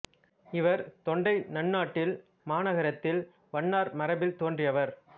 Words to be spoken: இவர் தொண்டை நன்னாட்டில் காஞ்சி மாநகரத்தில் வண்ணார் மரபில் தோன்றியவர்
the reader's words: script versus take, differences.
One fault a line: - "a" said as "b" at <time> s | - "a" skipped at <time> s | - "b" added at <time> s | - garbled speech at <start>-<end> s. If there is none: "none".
- "காஞ்சி" skipped at 2.1 s